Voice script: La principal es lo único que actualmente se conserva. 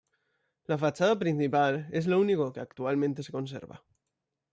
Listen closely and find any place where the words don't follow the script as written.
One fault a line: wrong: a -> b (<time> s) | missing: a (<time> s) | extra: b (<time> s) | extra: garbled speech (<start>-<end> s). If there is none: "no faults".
extra: fachada (0.8 s)